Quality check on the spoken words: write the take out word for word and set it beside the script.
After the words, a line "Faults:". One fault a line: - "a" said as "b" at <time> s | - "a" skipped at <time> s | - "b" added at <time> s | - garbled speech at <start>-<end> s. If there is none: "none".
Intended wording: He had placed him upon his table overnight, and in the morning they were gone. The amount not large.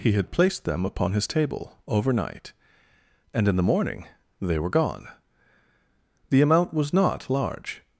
He had placed them upon his table overnight, and in the morning they were gone. The amount was not large.
Faults:
- "him" said as "them" at 0.7 s
- "was" added at 6.7 s